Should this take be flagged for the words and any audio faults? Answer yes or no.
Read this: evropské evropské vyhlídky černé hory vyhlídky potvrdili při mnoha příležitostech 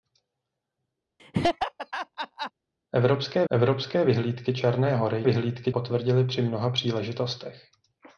yes